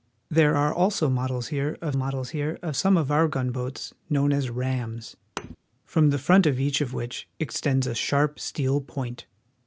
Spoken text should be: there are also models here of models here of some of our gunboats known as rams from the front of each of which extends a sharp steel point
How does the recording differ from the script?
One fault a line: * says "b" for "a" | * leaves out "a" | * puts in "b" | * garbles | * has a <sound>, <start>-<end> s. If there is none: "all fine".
* has a thud, 5.4-5.6 s